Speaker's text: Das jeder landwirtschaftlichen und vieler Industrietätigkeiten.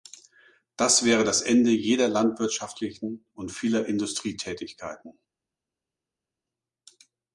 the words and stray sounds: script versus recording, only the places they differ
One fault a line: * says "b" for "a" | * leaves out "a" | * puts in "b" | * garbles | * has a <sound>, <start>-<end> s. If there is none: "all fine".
* puts in "wäre das Ende"